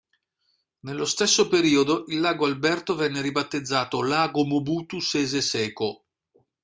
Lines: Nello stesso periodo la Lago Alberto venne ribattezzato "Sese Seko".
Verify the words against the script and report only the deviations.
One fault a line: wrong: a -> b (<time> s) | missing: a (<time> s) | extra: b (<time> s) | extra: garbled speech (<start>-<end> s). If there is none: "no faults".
wrong: la -> il (2.1 s)
extra: Lago Mobutu (4.0 s)